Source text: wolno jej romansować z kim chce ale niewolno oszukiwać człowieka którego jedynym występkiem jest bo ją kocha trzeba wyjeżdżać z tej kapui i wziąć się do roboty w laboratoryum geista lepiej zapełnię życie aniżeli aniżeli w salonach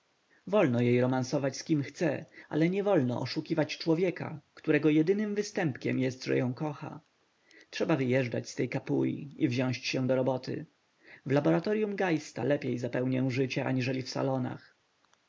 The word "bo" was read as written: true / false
false